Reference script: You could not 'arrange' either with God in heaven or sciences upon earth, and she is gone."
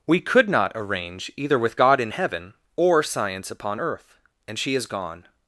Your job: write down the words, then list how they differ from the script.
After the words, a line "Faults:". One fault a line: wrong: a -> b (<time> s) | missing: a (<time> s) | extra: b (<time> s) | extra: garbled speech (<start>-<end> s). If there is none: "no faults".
We could not 'arrange' either with God in heaven or science upon earth, and she is gone."
Faults:
wrong: You -> We (0.1 s)
wrong: sciences -> science (3.0 s)